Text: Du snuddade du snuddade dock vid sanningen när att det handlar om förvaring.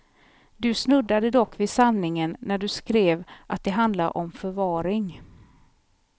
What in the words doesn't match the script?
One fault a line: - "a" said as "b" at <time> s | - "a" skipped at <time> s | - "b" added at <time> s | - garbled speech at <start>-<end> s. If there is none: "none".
- "du snuddade" skipped at 1.3 s
- "du skrev" added at 2.6 s